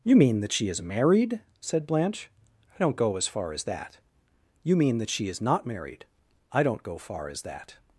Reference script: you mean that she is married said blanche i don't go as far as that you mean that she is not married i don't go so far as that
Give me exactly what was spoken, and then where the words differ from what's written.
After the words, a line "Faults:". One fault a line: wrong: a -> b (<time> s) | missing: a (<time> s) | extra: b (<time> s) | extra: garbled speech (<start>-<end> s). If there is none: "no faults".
you mean that she is married said blanche i don't go as far as that you mean that she is not married i don't go far as that
Faults:
missing: so (7.0 s)